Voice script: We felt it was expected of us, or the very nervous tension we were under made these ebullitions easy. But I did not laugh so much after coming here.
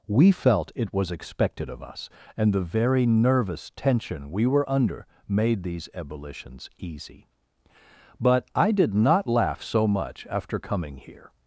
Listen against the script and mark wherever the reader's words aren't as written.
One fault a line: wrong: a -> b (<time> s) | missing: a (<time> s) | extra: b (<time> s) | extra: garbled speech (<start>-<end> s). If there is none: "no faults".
wrong: or -> and (2.4 s)